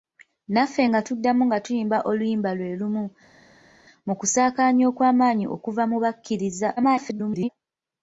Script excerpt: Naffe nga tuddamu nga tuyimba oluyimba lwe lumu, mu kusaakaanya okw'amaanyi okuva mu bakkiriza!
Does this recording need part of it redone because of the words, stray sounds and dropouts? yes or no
yes